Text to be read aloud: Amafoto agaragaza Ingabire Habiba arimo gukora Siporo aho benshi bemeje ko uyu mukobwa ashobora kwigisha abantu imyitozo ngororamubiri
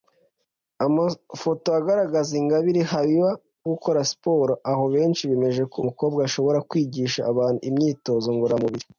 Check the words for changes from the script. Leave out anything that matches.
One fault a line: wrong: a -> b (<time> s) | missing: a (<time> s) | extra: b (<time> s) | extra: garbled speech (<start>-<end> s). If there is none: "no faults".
missing: arimo (3.3 s)
missing: uyu (5.8 s)